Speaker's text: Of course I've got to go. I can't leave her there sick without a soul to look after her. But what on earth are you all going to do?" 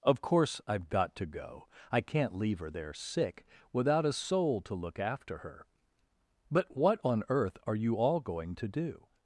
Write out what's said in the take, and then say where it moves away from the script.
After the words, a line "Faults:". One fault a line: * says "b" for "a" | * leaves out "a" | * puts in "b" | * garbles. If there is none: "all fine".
Of course I've got to go. I can't leave her there sick without a soul to look after her. But what on earth are you all going to do?"
Faults:
all fine